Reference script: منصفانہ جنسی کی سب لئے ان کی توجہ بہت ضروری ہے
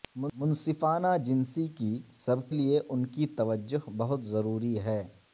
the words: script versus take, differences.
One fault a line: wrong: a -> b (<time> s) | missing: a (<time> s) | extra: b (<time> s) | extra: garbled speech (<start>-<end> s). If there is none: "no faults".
no faults